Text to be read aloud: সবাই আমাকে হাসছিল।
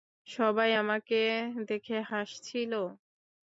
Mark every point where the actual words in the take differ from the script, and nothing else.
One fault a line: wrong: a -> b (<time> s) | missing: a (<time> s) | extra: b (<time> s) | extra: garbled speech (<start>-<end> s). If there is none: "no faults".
extra: দেখে (1.7 s)